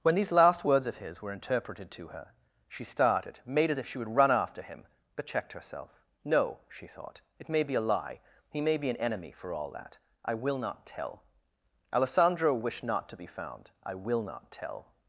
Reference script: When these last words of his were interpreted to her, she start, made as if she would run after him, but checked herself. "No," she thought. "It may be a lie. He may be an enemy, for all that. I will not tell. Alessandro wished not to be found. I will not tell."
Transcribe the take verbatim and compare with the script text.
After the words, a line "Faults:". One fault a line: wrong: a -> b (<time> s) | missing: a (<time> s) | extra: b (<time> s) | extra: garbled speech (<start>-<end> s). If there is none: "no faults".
When these last words of his were interpreted to her, she started, made as if she would run after him, but checked herself. "No," she thought. "It may be a lie. He may be an enemy, for all that. I will not tell. Alessandro wished not to be found. I will not tell."
Faults:
wrong: start -> started (2.8 s)